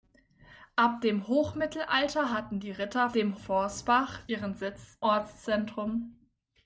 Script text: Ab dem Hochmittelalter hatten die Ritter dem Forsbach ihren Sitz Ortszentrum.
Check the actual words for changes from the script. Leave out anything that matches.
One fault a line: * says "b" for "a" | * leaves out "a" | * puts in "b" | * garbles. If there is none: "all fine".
all fine